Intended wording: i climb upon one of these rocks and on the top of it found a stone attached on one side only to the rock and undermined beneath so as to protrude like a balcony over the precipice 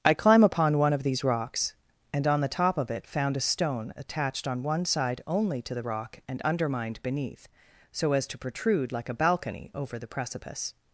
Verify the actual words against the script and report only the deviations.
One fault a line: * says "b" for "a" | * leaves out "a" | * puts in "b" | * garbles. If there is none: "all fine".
all fine